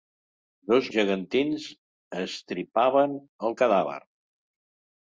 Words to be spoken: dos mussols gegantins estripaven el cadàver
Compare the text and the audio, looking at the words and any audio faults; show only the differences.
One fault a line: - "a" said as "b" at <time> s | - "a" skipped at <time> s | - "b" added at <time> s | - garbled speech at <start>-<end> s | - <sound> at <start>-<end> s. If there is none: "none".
- "mussols" skipped at 0.9 s